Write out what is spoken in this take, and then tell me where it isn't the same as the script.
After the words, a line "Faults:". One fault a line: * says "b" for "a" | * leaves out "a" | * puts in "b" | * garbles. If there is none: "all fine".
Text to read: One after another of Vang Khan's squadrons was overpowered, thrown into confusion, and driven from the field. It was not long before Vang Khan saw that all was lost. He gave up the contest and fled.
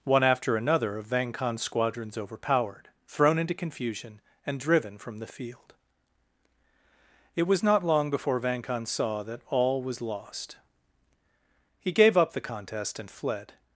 One after another of Vang Khan's squadrons overpowered, thrown into confusion, and driven from the field. It was not long before Vang Khan saw that all was lost. He gave up the contest and fled.
Faults:
* leaves out "was"